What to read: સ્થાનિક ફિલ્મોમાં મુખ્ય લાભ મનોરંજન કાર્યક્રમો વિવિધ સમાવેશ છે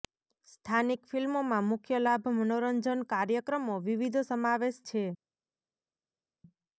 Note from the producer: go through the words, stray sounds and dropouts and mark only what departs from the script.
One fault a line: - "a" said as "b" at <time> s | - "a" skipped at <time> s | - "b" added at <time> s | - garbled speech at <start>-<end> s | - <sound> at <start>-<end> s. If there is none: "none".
none